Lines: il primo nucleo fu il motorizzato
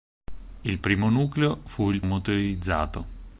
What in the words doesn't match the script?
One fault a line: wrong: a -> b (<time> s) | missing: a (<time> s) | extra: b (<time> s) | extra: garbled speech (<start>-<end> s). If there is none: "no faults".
no faults